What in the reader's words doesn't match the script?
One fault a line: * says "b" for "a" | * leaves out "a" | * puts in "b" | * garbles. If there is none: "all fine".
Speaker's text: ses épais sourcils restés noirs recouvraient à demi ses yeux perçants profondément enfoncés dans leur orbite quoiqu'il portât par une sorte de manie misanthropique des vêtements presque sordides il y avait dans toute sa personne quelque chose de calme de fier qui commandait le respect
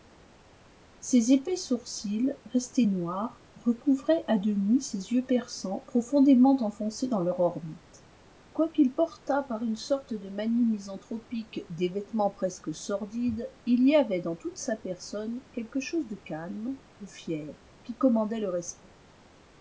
all fine